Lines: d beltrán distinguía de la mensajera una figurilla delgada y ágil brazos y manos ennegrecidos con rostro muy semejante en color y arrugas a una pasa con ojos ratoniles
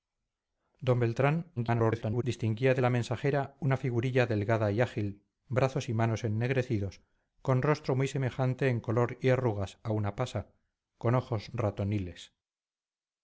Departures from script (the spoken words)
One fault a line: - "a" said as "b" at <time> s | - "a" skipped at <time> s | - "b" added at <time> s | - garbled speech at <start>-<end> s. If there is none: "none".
- garbled speech at 1.6-2.2 s